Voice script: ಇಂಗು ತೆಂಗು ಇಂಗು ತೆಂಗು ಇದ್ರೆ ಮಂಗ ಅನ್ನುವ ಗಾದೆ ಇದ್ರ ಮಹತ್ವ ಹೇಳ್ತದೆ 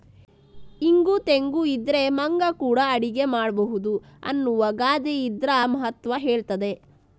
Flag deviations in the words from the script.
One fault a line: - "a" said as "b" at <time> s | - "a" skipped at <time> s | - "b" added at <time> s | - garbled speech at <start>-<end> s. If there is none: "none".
- "ಇಂಗು ತೆಂಗು ಇದ್ರೆ ಮಂಗ" said as "ಇದ್ರೆ ಮಂಗ ಕೂಡಾ ಅಡಿಗೆ ಮಾಡ್ಬಹುದು" at 1.6 s